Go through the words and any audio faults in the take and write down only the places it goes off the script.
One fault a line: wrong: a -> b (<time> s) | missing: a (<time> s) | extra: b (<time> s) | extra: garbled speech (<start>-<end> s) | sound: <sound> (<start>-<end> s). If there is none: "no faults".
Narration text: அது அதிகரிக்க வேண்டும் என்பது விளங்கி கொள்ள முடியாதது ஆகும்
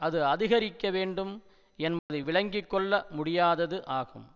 sound: dropout (2.0-2.1 s)